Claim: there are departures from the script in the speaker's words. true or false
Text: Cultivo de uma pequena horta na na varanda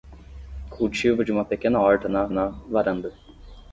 false